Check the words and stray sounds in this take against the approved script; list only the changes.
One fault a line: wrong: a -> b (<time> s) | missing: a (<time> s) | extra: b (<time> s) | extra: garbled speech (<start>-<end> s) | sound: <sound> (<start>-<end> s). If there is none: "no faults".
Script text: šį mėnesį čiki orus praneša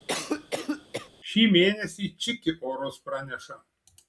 sound: cough (0.1-1.1 s)